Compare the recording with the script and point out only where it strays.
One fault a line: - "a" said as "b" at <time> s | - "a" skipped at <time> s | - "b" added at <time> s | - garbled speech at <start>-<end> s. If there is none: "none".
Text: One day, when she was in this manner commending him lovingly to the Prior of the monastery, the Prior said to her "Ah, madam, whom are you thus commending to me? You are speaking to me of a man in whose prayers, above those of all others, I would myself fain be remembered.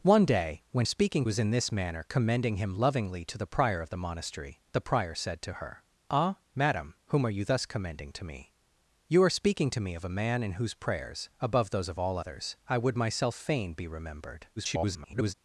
- "she" said as "speaking" at 0.8 s
- garbled speech at 14.6-15.3 s